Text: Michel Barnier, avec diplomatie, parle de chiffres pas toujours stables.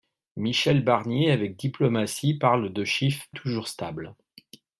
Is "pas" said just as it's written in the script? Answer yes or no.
no